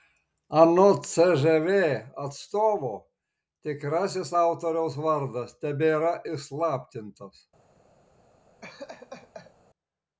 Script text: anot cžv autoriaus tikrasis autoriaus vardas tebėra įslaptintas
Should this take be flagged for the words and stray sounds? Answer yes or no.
yes